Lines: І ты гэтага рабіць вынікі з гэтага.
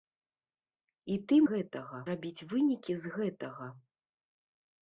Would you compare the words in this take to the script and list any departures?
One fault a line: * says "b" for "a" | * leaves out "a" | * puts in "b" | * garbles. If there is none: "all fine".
all fine